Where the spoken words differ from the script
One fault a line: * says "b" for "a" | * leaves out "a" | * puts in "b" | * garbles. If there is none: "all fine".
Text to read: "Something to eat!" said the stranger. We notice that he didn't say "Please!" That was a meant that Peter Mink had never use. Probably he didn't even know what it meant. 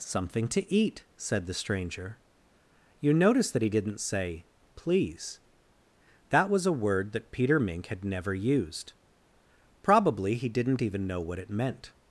* says "You" for "We"
* says "word" for "meant"
* says "used" for "use"